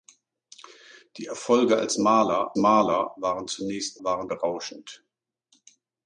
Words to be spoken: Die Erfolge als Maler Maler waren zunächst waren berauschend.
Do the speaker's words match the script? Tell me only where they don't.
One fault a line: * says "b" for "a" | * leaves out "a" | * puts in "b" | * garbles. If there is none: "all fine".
all fine